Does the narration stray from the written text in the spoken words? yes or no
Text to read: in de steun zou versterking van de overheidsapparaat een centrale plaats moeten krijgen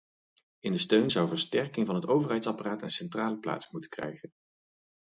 yes